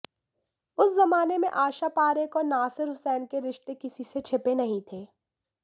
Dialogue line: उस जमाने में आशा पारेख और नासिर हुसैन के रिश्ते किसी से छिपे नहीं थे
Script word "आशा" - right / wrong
right